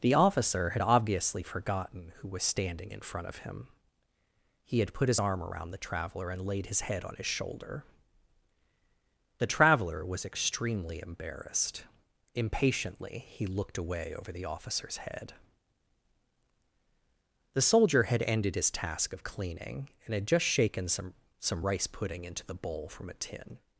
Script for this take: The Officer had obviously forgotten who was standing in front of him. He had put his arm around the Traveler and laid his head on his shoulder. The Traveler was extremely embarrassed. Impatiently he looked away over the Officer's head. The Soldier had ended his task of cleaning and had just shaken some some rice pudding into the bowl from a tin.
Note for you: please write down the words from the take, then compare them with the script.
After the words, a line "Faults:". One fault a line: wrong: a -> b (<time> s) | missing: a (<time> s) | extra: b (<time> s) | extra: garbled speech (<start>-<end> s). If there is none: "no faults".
The Officer had obviously forgotten who was standing in front of him. He had put his arm around the Traveler and laid his head on his shoulder. The Traveler was extremely embarrassed. Impatiently he looked away over the Officer's head. The Soldier had ended his task of cleaning and had just shaken some some rice pudding into the bowl from a tin.
Faults:
no faults